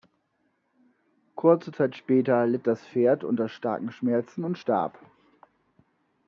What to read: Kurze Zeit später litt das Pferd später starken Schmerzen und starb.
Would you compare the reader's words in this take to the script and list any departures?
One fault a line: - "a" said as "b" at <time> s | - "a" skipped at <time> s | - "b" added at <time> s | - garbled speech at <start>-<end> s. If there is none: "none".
- "später" said as "unter" at 3.2 s